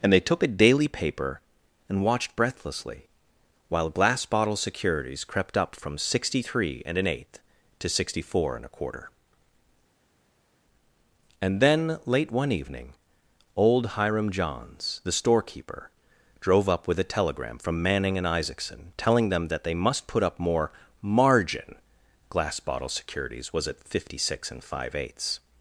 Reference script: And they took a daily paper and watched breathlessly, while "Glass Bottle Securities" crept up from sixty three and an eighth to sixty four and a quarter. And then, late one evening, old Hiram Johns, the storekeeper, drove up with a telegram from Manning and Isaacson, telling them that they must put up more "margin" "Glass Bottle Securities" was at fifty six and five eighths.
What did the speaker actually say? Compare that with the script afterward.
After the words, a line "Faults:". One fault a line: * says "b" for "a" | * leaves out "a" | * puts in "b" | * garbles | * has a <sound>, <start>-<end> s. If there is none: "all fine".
And they took a daily paper and watched breathlessly, while "Glass Bottle Securities" crept up from sixty three and an eighth to sixty four and a quarter. And then, late one evening, old Hiram Johns, the storekeeper, drove up with a telegram from Manning and Isaacson, telling them that they must put up more "margin" "Glass Bottle Securities" was at fifty six and five eighths.
Faults:
all fine